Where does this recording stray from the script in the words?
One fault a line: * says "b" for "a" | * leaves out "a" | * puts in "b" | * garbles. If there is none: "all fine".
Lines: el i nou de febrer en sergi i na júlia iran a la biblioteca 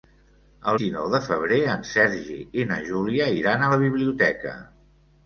all fine